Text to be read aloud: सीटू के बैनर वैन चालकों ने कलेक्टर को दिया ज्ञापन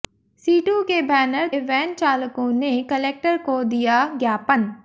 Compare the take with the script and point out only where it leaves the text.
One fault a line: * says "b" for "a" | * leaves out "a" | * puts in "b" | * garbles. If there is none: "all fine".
all fine